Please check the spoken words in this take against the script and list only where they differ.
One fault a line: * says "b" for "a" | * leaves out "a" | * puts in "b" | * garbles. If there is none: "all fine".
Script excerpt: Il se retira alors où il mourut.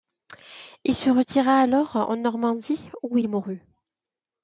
* puts in "en Normandie"